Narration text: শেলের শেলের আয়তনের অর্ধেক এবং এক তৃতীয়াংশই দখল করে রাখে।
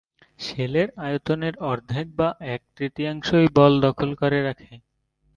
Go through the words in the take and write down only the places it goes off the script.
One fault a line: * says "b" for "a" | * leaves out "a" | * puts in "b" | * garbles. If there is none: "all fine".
* leaves out "শেলের"
* says "বা" for "এবং"
* puts in "বল"